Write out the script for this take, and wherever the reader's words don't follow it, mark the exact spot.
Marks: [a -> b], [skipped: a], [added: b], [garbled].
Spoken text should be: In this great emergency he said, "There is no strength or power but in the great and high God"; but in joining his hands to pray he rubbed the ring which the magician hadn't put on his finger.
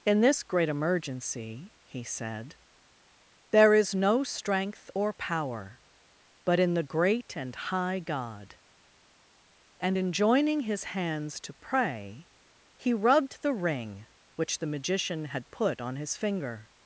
In this great emergency he said, "There is no strength or power but in the great and high God"; [but -> and] in joining his hands to pray he rubbed the ring which the magician [hadn't -> had] put on his finger.